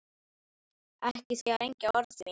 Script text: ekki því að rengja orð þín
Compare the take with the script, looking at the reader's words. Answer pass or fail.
pass